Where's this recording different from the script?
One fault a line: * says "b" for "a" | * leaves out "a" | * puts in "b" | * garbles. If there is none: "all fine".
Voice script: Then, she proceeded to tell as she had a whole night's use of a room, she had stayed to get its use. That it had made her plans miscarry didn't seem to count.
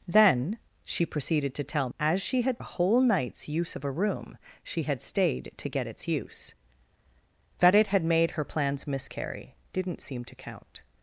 all fine